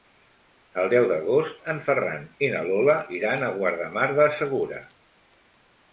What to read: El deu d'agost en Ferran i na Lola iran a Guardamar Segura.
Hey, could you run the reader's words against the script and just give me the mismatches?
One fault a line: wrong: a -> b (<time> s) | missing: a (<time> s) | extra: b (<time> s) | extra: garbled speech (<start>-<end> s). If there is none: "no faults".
extra: del (4.2 s)